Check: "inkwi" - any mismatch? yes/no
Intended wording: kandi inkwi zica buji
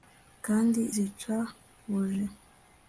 yes